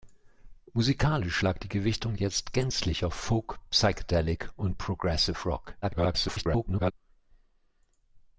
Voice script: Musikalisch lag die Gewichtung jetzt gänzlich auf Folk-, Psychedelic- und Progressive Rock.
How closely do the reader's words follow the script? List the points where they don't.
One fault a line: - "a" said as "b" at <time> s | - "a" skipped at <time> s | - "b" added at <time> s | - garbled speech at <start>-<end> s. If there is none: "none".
- garbled speech at 5.8-6.9 s